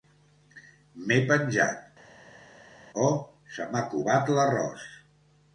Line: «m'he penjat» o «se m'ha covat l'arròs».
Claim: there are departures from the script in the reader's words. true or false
false